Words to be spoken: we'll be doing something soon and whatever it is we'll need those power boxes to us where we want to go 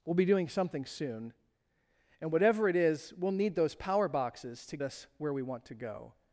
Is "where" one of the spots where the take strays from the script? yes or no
no